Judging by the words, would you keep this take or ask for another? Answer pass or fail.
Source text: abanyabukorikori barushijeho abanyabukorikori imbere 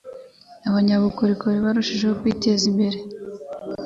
fail